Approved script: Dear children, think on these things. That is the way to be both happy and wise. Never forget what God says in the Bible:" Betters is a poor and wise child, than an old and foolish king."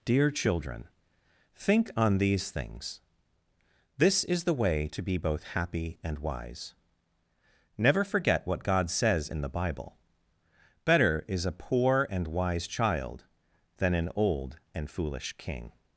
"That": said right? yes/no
no